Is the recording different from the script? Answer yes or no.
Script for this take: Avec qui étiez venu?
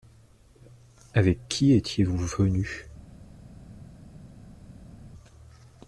yes